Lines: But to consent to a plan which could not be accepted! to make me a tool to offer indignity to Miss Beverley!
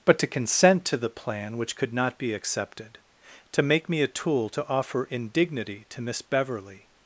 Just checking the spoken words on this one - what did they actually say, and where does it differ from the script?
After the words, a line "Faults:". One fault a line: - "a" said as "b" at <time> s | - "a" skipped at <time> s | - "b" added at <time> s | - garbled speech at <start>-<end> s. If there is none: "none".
But to consent to the plan which could not be accepted! to make me a tool to offer indignity to Miss Beverley!
Faults:
- "a" said as "the" at 1.0 s